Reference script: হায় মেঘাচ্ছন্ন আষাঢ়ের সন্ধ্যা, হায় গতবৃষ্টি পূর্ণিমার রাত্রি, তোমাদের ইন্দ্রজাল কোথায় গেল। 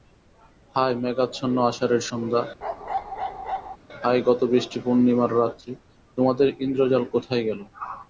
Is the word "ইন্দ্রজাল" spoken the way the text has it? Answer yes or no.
yes